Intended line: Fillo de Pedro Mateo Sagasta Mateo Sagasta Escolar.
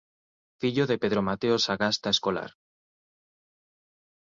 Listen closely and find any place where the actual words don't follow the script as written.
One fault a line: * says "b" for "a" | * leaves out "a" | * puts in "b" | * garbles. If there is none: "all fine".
* leaves out "Mateo Sagasta"